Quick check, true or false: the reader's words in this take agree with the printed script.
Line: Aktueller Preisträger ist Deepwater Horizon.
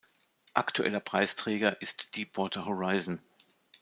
true